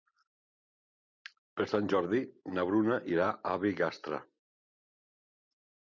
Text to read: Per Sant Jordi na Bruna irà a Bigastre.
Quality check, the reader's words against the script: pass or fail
pass